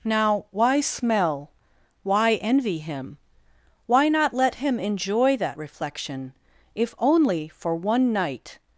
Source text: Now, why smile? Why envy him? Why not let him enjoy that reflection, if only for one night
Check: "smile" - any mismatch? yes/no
yes